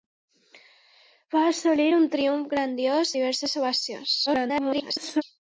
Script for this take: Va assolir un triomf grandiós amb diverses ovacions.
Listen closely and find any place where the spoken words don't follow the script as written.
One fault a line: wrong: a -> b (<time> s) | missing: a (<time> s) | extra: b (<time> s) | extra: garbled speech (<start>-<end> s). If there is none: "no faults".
missing: amb (3.1 s)
extra: garbled speech (4.3-5.2 s)